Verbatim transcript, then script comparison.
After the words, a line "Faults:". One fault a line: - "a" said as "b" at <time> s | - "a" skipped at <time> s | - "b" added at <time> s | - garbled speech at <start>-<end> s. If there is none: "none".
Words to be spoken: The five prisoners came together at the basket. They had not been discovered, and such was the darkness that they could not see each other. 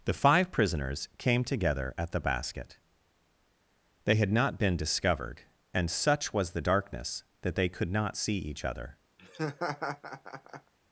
The five prisoners came together at the basket. They had not been discovered, and such was the darkness that they could not see each other.
Faults:
none